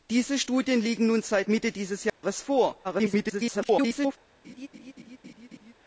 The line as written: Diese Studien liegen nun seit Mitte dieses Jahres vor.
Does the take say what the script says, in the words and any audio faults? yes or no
no